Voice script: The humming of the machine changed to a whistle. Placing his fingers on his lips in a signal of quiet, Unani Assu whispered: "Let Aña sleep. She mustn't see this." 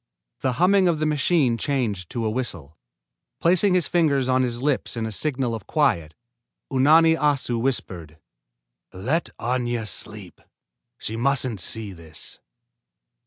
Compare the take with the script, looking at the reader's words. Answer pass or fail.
pass